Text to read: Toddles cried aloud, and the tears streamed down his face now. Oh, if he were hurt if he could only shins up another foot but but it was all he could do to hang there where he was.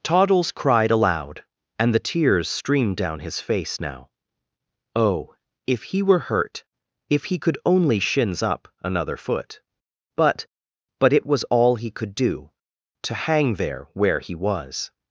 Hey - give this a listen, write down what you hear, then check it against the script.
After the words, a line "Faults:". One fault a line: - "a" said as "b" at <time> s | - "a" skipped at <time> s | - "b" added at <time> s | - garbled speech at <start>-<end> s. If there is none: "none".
Toddles cried aloud, and the tears streamed down his face now. Oh, if he were hurt if he could only shins up another foot but but it was all he could do to hang there where he was.
Faults:
none